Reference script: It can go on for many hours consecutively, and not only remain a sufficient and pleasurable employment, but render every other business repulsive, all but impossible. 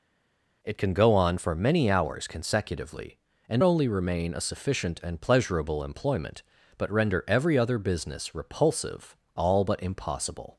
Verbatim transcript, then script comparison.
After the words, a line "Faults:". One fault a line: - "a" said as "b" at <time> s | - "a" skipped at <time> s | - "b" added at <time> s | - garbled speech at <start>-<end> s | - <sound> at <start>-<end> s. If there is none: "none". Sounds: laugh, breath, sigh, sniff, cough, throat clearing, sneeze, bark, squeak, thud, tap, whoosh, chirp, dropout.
It can go on for many hours consecutively, and only remain a sufficient and pleasurable employment, but render every other business repulsive, all but impossible.
Faults:
- "not" skipped at 3.6 s